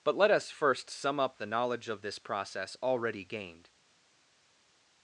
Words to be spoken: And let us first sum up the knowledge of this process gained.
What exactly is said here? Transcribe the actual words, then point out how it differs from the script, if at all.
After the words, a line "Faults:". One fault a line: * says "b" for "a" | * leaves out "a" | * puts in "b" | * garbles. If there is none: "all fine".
But let us first sum up the knowledge of this process already gained.
Faults:
* says "But" for "And"
* puts in "already"